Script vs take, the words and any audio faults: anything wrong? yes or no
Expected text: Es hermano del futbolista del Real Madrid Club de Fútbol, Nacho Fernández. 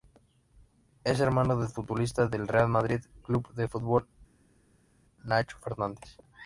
no